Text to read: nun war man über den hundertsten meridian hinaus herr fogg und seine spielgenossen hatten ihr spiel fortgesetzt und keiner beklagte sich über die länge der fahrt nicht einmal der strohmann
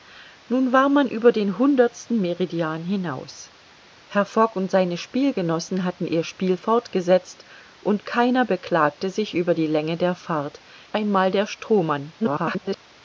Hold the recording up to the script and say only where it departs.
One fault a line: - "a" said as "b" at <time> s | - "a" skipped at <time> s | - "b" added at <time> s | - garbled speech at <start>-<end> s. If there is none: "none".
- "nicht" skipped at 10.6 s
- garbled speech at 12.2-12.8 s